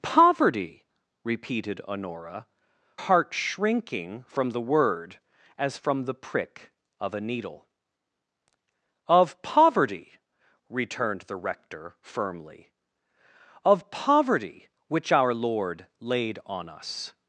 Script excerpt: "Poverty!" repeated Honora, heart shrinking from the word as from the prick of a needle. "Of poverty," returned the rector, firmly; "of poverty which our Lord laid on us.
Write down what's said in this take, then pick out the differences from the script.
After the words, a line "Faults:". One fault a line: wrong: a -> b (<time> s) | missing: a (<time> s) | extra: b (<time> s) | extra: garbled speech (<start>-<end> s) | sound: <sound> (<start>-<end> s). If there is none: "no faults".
"Poverty!" repeated Honora, heart shrinking from the word as from the prick of a needle. "Of poverty," returned the rector, firmly; "of poverty which our Lord laid on us.
Faults:
no faults